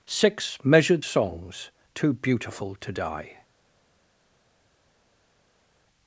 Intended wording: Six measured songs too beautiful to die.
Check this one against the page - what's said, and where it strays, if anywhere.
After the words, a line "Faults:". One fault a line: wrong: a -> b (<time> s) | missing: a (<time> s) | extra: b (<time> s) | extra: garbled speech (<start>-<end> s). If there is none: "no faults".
Six measured songs too beautiful to die.
Faults:
no faults